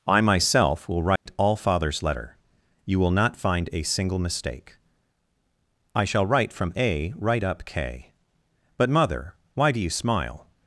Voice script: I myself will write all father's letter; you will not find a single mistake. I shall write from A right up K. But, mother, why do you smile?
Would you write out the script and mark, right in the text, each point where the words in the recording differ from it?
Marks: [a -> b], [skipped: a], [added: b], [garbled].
I myself will write all father's letter; you will not find a single mistake. I shall write from A right up K. But, mother, why do you smile?